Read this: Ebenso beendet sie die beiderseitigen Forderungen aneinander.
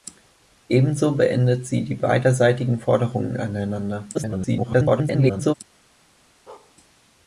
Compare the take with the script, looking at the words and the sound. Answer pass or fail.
fail